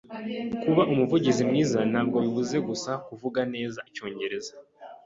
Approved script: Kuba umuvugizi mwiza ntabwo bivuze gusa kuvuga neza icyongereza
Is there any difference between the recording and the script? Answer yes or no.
no